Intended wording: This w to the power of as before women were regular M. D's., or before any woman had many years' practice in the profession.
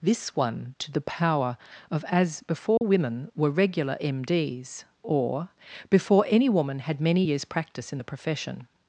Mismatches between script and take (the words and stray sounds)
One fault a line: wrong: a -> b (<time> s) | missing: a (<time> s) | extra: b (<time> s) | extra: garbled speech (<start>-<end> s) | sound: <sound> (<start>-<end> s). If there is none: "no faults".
wrong: w -> one (0.3 s)
sound: dropout (2.8-2.8 s)